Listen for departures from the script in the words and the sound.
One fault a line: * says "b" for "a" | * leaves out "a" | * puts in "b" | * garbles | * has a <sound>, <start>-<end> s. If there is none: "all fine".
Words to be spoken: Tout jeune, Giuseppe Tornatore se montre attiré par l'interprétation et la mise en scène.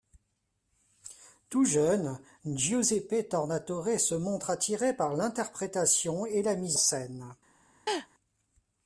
* leaves out "en"
* has a laugh, 7.9-8.1 s